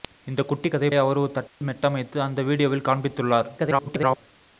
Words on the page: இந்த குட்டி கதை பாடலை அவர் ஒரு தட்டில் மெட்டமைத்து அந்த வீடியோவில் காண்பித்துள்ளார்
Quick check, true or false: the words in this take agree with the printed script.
false